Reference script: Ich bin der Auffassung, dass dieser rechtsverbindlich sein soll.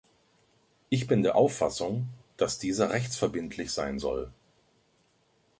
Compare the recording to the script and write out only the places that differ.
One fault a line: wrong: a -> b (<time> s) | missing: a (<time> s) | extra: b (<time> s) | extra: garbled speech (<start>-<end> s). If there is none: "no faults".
no faults